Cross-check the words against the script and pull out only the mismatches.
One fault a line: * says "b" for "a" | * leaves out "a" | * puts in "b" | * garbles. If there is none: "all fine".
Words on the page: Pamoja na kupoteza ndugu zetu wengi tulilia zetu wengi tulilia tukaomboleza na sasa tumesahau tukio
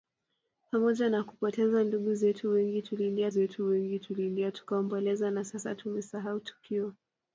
all fine